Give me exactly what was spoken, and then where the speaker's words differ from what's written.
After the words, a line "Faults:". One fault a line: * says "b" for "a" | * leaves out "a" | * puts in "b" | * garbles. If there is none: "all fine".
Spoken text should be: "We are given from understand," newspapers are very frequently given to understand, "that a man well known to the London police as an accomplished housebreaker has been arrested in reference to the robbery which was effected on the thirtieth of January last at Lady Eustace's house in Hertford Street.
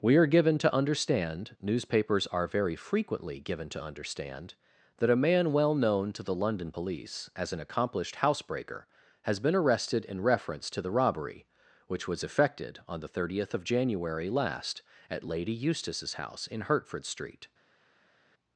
"We are given to understand," newspapers are very frequently given to understand, "that a man well known to the London police as an accomplished housebreaker has been arrested in reference to the robbery which was effected on the thirtieth of January last at Lady Eustace's house in Hertford Street.
Faults:
* says "to" for "from"